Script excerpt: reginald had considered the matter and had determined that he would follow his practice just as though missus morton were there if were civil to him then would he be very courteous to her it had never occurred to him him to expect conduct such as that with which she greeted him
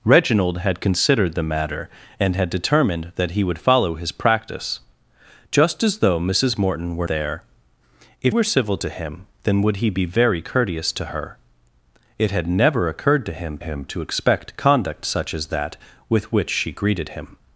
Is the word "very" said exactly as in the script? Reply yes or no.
yes